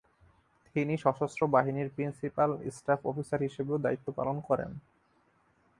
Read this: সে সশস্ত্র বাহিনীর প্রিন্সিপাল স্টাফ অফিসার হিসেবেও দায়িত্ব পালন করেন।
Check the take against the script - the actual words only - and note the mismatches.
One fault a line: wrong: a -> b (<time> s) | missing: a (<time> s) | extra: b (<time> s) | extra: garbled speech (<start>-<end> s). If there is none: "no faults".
wrong: সে -> তিনি (0.8 s)